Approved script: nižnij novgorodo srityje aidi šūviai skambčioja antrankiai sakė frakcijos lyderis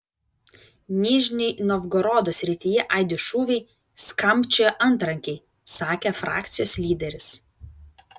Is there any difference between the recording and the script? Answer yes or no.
no